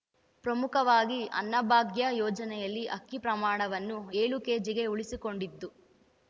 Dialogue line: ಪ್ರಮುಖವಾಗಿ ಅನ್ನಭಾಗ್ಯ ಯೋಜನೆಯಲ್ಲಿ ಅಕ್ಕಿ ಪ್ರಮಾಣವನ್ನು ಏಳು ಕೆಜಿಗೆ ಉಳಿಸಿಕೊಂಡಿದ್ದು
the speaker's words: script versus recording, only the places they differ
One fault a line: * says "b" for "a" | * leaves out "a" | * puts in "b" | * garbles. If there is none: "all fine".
all fine